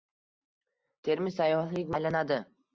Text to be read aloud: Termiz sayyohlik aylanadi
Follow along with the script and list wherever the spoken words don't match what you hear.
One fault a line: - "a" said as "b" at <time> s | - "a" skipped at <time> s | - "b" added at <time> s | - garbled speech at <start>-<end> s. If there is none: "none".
none